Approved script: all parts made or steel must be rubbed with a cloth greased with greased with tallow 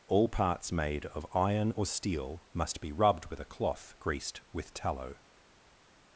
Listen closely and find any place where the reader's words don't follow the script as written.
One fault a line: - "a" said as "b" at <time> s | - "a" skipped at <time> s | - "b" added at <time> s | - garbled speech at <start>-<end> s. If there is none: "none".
- "of iron" added at 1.1 s
- "greased with" skipped at 4.7 s